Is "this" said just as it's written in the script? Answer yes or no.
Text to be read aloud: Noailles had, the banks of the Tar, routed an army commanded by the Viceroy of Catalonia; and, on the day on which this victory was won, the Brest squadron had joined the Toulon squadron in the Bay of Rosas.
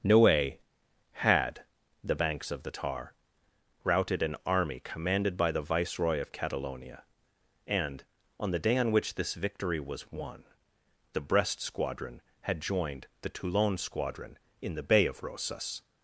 yes